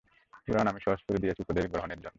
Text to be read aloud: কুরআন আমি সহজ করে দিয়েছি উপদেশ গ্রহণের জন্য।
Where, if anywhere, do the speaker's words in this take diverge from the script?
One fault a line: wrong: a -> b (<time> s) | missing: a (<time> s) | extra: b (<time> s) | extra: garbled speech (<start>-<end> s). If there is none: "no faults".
no faults